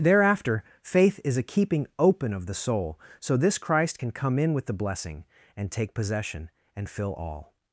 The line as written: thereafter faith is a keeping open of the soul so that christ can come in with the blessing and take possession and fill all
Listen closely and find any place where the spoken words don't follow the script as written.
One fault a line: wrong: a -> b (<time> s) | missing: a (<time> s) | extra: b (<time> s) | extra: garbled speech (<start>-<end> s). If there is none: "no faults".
wrong: that -> this (3.4 s)